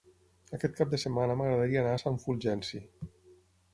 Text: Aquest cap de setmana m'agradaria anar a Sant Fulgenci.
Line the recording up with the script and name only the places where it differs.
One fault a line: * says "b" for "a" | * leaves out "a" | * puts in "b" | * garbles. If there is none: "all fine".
all fine